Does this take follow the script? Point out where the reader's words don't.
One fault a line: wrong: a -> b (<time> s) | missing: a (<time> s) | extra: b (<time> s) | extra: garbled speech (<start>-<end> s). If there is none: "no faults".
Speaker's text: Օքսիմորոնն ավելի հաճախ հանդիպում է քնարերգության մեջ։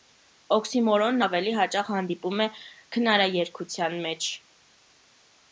no faults